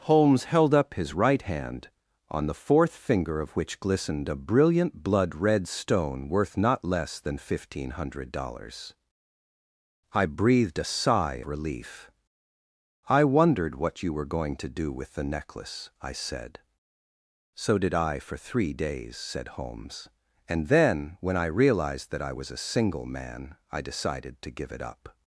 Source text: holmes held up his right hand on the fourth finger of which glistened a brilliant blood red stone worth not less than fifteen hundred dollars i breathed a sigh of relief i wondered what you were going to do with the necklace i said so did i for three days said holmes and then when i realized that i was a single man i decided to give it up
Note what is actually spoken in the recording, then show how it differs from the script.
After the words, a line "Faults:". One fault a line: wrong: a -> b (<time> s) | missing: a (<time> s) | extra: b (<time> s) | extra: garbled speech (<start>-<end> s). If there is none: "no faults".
holmes held up his right hand on the fourth finger of which glistened a brilliant blood red stone worth not less than fifteen hundred dollars i breathed a sigh relief i wondered what you were going to do with the necklace i said so did i for three days said holmes and then when i realized that i was a single man i decided to give it up
Faults:
missing: of (11.4 s)